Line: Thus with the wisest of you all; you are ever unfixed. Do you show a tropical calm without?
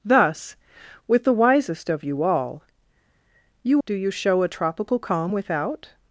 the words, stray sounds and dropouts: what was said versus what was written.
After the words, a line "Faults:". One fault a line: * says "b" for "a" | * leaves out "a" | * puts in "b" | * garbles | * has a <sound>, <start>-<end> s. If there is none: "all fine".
Thus with the wisest of you all; you. Do you show a tropical calm without?
Faults:
* leaves out "are ever unfixed"